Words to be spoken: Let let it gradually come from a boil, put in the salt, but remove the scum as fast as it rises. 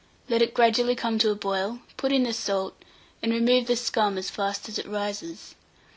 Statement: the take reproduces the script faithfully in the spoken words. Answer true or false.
false